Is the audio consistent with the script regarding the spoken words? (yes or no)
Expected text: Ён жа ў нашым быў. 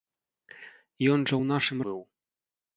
yes